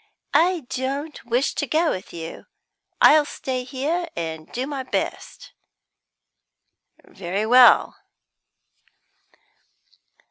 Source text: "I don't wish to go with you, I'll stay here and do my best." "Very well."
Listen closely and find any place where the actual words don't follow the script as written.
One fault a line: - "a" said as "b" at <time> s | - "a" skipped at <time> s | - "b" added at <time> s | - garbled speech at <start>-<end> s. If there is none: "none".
none